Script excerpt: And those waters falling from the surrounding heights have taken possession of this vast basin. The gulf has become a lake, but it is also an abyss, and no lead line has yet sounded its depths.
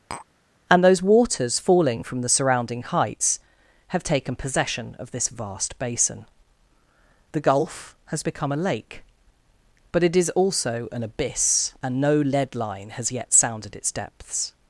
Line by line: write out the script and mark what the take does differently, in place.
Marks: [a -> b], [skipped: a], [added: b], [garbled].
And those waters falling from the surrounding heights have taken possession of this vast basin. The gulf has become a lake, but it is also an abyss, and no lead line has yet sounded its depths.